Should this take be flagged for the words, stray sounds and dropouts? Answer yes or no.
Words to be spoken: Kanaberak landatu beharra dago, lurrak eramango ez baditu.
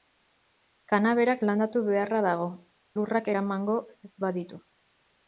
no